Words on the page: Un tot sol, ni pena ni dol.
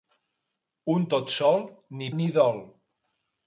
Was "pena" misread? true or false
true